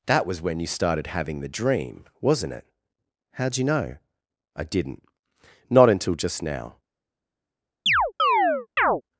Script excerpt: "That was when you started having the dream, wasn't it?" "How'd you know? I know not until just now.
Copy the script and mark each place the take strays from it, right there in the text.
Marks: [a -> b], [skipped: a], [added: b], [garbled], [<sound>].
"That was when you started having the dream, wasn't it?" "How'd you know? I [know -> didn't] not until just now. [chirp]